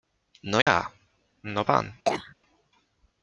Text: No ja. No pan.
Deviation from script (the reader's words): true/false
false